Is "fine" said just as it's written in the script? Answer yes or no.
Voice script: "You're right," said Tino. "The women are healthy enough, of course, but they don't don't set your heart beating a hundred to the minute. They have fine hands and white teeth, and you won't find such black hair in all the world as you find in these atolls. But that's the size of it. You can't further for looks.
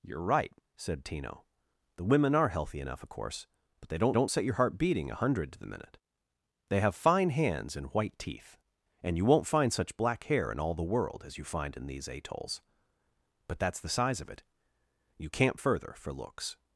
yes